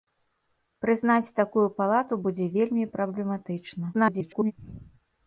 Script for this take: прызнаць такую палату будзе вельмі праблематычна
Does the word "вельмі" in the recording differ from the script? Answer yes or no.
no